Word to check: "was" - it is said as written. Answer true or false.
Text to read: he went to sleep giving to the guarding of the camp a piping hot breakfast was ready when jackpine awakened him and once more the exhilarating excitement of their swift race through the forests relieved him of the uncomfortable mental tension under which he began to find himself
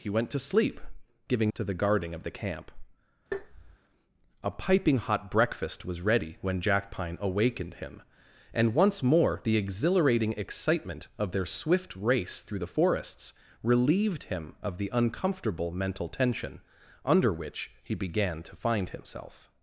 true